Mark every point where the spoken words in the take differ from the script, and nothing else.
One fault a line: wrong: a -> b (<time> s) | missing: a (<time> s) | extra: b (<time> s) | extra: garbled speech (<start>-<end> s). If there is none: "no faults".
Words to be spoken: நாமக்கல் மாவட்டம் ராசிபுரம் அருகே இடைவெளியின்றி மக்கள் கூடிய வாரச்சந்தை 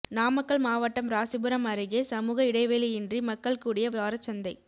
extra: சமூக (2.0 s)